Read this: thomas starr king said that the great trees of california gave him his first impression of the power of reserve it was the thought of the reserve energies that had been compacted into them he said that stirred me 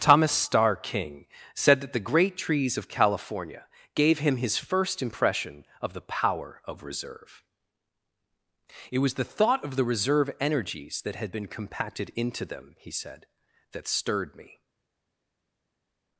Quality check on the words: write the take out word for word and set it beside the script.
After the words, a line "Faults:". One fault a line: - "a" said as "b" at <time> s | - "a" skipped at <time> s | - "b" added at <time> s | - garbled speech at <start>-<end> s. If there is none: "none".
thomas starr king said that the great trees of california gave him his first impression of the power of reserve it was the thought of the reserve energies that had been compacted into them he said that stirred me
Faults:
none